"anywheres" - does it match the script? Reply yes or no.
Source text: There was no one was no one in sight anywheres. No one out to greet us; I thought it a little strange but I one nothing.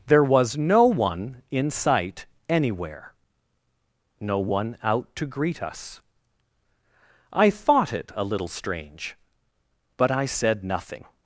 no